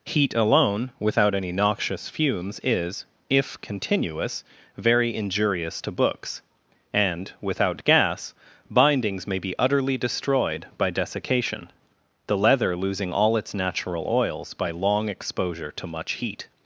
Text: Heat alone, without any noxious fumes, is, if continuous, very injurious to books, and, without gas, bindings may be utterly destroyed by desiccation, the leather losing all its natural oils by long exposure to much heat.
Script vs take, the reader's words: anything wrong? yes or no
no